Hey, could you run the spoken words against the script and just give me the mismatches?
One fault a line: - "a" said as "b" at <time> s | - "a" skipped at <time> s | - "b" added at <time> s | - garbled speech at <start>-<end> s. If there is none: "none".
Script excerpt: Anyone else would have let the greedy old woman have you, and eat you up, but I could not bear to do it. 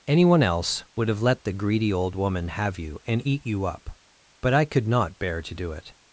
none